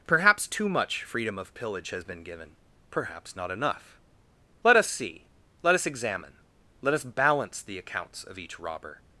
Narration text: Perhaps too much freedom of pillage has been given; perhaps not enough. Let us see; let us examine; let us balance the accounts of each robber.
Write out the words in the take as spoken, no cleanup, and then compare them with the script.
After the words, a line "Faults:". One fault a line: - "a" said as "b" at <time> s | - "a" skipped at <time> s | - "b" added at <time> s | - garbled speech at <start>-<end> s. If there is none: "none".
Perhaps too much freedom of pillage has been given; perhaps not enough. Let us see; let us examine; let us balance the accounts of each robber.
Faults:
none